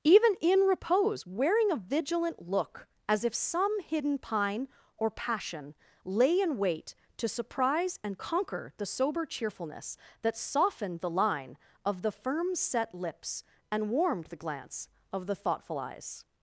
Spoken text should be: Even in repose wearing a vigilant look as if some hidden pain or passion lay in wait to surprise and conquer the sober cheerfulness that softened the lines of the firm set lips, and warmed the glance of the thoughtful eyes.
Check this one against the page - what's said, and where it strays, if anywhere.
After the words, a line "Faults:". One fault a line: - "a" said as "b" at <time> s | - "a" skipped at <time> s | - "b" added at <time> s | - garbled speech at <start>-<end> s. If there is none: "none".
Even in repose wearing a vigilant look as if some hidden pine or passion lay in wait to surprise and conquer the sober cheerfulness that softened the line of the firm set lips, and warmed the glance of the thoughtful eyes.
Faults:
- "pain" said as "pine" at 4.2 s
- "lines" said as "line" at 11.1 s